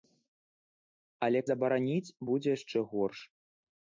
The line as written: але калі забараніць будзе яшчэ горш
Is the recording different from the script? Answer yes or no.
yes